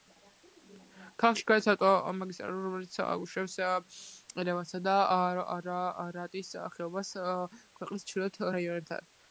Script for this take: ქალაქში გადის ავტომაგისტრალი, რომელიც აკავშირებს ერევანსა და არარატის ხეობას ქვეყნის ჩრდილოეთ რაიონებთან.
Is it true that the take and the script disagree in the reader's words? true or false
false